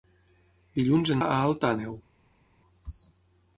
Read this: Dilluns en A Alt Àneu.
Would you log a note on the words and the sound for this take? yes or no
no